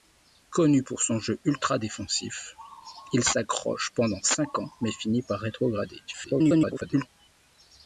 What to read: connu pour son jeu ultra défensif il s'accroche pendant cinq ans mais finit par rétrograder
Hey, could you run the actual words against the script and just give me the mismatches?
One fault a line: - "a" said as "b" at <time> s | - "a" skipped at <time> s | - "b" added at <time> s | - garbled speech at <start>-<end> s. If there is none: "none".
- garbled speech at 6.1-7.1 s